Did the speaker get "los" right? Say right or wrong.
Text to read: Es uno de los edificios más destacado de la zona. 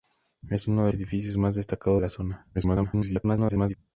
wrong